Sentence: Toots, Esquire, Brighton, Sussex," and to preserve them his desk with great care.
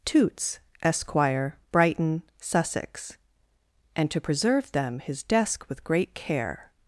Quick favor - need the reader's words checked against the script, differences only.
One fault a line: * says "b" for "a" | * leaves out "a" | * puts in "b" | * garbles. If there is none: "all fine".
all fine